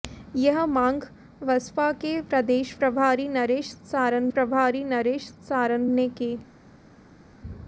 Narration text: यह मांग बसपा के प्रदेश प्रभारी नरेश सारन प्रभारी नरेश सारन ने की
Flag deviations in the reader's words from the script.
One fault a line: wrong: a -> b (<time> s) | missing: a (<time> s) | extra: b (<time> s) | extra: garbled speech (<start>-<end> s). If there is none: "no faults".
no faults